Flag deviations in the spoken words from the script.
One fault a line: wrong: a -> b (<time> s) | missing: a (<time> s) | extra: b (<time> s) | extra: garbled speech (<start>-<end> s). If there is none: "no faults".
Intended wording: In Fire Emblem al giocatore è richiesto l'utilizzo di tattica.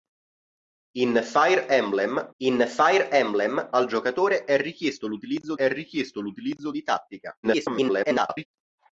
extra: in Fire Emblem (2.4 s)
extra: è richiesto l'utilizzo (5.5 s)
extra: garbled speech (7.4-8.5 s)